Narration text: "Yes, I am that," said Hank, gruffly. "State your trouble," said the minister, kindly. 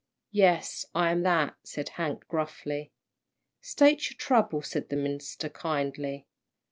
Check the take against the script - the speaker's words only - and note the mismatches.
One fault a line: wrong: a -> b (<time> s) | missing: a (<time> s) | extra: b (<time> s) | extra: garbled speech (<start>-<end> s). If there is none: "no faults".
no faults